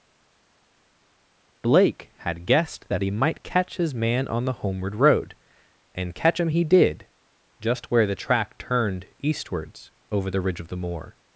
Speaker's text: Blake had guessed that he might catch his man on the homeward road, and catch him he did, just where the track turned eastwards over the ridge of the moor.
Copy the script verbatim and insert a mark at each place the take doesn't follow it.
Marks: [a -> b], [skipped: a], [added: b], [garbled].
Blake had guessed that he might catch his man on the homeward road, and catch him he did, just where the track turned eastwards over the ridge of the moor.